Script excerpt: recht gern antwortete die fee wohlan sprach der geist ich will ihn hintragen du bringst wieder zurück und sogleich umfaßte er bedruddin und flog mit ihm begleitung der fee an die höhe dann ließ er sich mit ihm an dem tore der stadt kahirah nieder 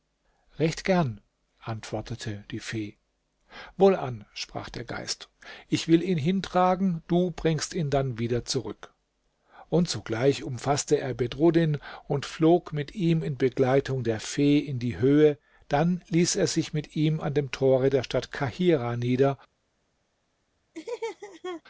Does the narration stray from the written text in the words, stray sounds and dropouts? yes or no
yes